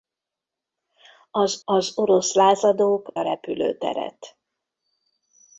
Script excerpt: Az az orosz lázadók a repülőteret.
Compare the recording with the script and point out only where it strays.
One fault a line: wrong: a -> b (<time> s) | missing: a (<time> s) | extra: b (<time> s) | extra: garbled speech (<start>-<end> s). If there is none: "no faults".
no faults